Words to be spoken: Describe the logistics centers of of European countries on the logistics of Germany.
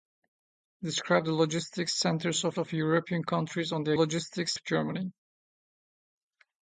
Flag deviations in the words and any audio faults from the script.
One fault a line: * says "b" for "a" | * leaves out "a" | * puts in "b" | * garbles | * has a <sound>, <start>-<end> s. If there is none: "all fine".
all fine